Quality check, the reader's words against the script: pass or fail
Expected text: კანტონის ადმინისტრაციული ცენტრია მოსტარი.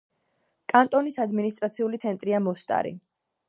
pass